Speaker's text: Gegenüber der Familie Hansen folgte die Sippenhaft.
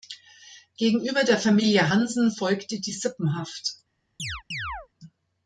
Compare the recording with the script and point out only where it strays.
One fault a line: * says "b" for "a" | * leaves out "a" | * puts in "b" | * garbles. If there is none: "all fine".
all fine